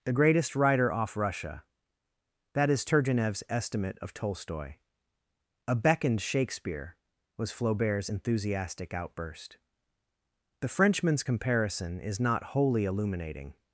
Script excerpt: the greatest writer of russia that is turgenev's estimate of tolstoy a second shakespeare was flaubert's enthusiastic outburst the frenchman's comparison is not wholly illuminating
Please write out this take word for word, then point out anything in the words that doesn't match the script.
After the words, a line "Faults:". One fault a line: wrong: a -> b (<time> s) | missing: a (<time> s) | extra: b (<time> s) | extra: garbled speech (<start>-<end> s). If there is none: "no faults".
the greatest writer off russia that is turgenev's estimate of tolstoy a beckoned shakespeare was flaubert's enthusiastic outburst the frenchman's comparison is not wholly illuminating
Faults:
wrong: of -> off (0.9 s)
wrong: second -> beckoned (5.8 s)